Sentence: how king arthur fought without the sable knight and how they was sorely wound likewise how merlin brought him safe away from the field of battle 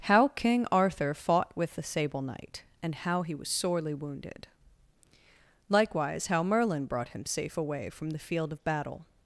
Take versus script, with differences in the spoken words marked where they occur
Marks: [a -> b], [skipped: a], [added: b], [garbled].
how king arthur fought [without -> with] the sable knight and how [they -> he] was sorely [wound -> wounded] likewise how merlin brought him safe away from the field of battle